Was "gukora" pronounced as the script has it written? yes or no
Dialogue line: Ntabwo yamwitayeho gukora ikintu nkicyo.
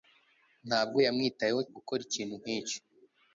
yes